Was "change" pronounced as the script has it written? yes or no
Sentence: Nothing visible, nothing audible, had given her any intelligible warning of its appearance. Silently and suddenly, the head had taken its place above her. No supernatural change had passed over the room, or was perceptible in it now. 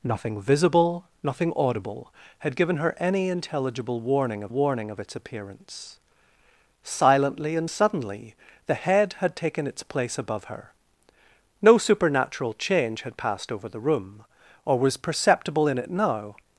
yes